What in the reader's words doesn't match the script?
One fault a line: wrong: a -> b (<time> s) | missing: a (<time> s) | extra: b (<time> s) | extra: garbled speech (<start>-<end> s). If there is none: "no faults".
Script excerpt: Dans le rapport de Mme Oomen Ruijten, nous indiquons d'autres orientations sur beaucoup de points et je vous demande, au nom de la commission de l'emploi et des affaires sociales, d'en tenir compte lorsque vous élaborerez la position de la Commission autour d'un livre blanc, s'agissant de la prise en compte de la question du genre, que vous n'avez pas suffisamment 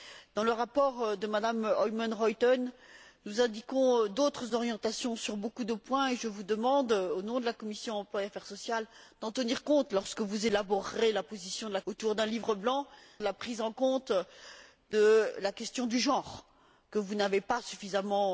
missing: Commission (11.8 s)
missing: s'agissant (12.9 s)